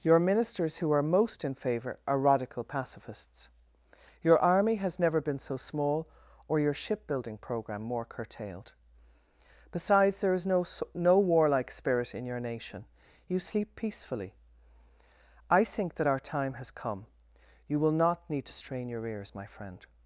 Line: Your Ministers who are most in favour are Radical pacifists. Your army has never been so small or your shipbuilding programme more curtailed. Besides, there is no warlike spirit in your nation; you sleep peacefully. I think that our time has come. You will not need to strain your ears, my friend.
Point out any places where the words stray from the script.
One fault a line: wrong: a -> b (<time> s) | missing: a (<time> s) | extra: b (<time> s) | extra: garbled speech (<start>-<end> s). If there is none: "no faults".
extra: no (10.9 s)